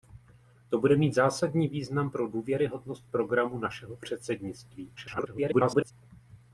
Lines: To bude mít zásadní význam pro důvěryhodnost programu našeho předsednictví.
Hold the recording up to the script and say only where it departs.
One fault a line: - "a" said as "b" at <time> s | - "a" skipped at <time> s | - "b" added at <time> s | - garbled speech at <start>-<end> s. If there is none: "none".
- garbled speech at 5.0-5.9 s